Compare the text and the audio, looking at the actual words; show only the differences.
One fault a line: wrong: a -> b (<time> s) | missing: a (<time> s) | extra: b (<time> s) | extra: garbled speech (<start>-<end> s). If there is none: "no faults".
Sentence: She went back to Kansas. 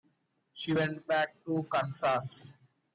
no faults